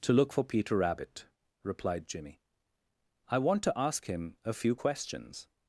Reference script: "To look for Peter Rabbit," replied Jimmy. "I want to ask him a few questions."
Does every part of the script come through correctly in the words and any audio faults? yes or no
yes